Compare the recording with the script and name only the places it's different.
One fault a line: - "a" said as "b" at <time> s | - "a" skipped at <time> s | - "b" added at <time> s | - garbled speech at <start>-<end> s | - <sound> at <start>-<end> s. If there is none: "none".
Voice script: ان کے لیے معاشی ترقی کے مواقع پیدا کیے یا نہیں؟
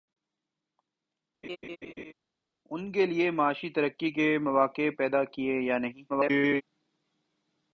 - laugh at 1.4-2.1 s
- garbled speech at 6.1-6.6 s